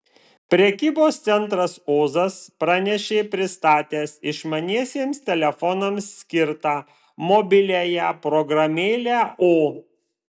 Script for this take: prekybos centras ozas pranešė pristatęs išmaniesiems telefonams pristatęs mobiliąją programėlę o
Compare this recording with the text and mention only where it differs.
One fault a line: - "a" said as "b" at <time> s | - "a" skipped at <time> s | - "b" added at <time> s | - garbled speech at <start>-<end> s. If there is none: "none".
- "pristatęs" said as "skirtą" at 6.2 s